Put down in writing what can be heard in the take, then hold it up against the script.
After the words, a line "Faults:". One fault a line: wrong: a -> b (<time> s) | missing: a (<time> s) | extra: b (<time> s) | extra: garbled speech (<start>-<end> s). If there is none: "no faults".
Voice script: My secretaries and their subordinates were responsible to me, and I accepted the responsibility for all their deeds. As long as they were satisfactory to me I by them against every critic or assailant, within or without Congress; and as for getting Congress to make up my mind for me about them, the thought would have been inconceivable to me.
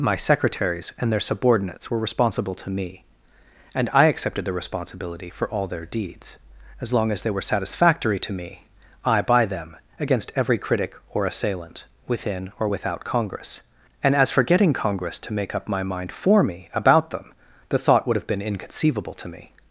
My secretaries and their subordinates were responsible to me, and I accepted the responsibility for all their deeds. As long as they were satisfactory to me I by them against every critic or assailant, within or without Congress; and as for getting Congress to make up my mind for me about them, the thought would have been inconceivable to me.
Faults:
no faults